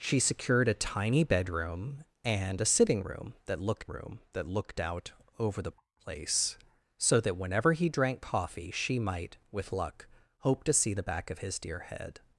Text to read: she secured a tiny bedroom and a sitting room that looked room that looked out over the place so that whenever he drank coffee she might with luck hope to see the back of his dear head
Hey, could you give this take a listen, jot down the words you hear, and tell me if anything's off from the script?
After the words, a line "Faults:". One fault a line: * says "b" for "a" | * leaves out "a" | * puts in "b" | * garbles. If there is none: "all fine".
she secured a tiny bedroom and a sitting room that looked room that looked out over the place so that whenever he drank coffee she might with luck hope to see the back of his dear head
Faults:
all fine